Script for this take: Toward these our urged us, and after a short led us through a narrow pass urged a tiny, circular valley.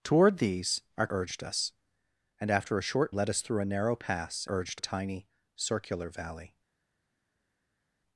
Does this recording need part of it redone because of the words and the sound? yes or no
no